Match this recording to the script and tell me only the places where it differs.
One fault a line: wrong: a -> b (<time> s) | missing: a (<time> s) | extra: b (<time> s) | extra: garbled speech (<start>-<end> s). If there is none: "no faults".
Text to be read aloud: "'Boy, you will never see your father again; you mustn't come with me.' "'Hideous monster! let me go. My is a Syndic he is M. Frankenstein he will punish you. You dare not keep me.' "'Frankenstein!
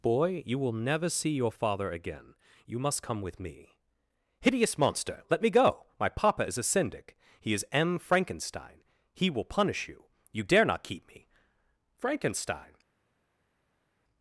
wrong: mustn't -> must (2.8 s)
extra: papa (6.1 s)